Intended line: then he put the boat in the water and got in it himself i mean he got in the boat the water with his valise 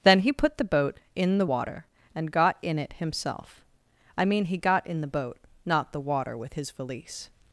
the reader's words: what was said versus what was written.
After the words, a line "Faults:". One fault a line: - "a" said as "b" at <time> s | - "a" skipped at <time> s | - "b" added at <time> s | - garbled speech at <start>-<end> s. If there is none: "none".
then he put the boat in the water and got in it himself i mean he got in the boat not the water with his valise
Faults:
- "not" added at 5.6 s